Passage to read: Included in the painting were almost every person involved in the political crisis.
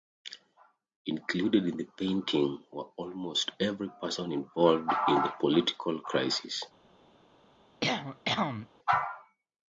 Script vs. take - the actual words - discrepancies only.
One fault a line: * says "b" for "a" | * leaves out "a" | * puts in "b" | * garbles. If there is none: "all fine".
all fine